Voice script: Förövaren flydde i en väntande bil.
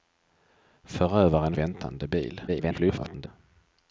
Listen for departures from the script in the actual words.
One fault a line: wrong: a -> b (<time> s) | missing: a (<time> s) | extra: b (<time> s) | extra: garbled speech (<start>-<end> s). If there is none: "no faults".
missing: flydde i en (1.6 s)
extra: garbled speech (2.5-3.3 s)